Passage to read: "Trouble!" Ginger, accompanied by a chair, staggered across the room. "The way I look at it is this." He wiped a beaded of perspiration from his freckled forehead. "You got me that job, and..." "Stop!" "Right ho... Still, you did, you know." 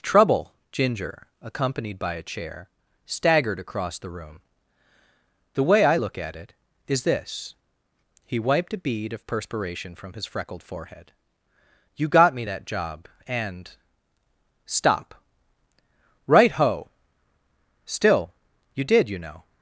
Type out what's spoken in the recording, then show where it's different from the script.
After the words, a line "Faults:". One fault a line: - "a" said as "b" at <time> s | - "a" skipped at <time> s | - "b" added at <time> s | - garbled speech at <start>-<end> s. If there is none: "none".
"Trouble!" Ginger, accompanied by a chair, staggered across the room. "The way I look at it is this." He wiped a bead of perspiration from his freckled forehead. "You got me that job, and..." "Stop!" "Right ho... Still, you did, you know."
Faults:
- "beaded" said as "bead" at 8.8 s